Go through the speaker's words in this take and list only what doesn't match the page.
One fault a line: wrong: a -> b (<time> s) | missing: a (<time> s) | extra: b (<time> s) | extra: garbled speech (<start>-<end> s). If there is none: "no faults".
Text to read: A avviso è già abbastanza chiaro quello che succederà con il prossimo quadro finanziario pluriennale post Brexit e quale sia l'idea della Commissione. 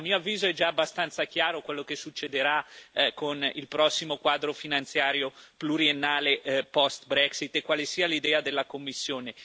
extra: mio (0.0 s)